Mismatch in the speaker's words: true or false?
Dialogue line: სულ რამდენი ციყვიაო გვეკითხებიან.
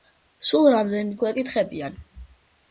true